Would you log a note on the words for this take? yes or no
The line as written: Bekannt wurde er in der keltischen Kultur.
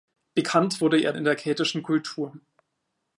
no